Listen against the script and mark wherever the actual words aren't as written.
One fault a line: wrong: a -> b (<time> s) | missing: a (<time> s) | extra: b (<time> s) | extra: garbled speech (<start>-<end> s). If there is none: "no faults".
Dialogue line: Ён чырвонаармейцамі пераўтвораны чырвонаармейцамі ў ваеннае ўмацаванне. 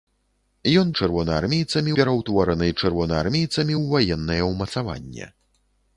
no faults